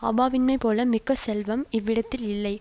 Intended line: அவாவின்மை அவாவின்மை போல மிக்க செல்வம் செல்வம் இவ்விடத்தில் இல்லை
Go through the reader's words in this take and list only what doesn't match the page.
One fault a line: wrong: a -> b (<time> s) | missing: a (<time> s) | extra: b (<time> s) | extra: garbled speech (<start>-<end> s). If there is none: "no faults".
missing: அவாவின்மை (0.6 s)
missing: செல்வம் (1.6 s)